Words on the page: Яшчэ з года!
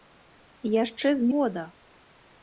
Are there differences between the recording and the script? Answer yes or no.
no